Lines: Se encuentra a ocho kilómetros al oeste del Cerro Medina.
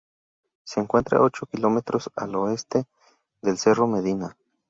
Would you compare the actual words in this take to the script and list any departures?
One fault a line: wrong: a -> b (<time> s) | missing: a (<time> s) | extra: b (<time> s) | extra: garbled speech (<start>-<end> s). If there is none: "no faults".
no faults